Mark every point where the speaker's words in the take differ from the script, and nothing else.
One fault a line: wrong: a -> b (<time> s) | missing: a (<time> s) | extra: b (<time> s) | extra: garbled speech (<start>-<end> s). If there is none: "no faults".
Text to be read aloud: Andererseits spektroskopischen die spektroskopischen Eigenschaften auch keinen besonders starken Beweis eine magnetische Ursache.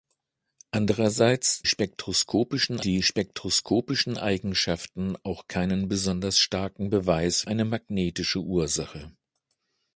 no faults